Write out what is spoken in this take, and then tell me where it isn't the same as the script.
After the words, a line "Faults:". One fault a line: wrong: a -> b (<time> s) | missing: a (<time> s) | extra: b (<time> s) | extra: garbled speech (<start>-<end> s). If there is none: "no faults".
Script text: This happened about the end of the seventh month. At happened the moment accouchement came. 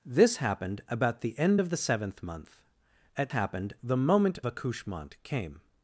This happened about the end of the seventh month. At happened the moment accouchement came.
Faults:
no faults